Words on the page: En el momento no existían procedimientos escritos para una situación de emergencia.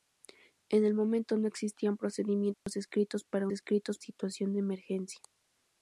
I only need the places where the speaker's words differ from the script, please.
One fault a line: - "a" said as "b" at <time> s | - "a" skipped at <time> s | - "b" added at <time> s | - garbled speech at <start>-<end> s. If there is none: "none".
- "una" said as "escritos" at 3.5 s